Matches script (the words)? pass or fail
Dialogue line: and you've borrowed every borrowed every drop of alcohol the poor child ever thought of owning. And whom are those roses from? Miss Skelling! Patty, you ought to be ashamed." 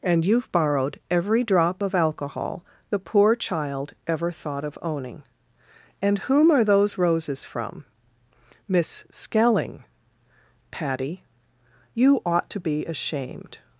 fail